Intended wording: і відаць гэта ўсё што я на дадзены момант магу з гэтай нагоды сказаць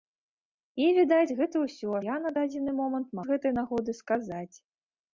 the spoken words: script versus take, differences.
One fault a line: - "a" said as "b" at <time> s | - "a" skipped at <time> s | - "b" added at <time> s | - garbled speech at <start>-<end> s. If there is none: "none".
- "што" skipped at 1.9 s
- "магу" skipped at 3.2 s